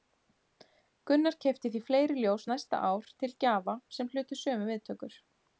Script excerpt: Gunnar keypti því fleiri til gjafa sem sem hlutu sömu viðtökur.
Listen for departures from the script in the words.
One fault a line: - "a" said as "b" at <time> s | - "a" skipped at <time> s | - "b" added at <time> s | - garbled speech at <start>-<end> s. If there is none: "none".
- "ljós næsta ár" added at 2.2 s
- "sem" skipped at 4.1 s